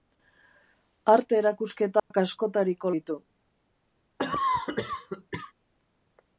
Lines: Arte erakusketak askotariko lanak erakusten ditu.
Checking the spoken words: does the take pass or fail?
fail